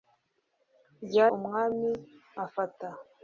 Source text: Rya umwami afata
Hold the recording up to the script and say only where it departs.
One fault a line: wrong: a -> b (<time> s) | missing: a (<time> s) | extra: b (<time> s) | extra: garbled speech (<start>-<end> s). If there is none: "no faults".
no faults